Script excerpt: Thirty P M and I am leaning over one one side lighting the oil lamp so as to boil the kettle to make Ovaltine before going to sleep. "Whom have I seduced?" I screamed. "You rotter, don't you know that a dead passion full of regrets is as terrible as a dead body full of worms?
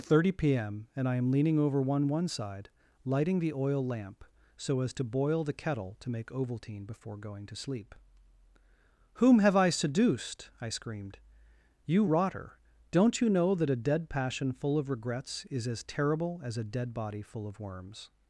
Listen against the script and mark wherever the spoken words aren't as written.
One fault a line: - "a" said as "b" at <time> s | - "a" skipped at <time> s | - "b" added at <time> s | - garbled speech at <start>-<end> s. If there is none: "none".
none